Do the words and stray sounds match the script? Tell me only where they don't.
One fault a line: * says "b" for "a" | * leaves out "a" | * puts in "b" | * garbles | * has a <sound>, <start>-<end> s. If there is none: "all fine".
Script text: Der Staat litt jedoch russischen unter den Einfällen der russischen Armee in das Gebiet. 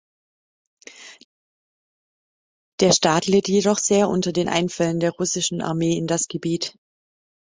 * says "sehr" for "russischen"